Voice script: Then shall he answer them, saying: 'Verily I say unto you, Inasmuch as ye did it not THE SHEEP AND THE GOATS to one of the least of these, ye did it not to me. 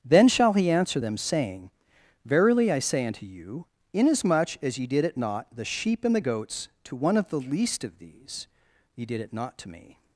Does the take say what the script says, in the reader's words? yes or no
yes